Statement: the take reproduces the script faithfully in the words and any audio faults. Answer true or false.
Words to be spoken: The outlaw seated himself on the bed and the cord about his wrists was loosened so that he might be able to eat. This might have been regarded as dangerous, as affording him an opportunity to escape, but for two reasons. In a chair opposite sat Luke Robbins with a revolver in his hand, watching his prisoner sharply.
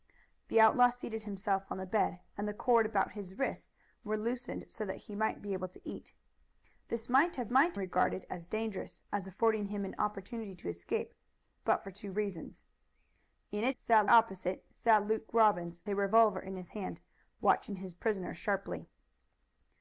false